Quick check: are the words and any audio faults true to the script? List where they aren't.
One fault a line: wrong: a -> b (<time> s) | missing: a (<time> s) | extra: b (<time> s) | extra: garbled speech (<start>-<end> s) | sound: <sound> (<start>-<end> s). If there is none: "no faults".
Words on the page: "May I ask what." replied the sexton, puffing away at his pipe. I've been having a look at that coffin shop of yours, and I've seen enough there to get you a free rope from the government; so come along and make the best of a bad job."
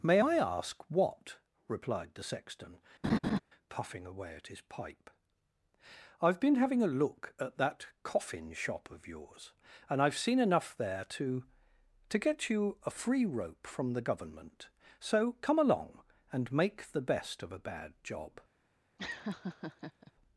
sound: laugh (3.0-3.4 s)
extra: to (12.1 s)
sound: laugh (19.0-20.1 s)